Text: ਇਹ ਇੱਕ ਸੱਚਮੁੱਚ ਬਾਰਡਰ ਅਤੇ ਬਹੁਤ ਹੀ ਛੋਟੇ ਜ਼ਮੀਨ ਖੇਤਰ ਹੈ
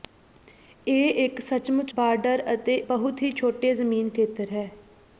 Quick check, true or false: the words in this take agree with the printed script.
true